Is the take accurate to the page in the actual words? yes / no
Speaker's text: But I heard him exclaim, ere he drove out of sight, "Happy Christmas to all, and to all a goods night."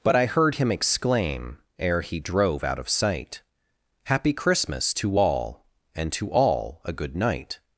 no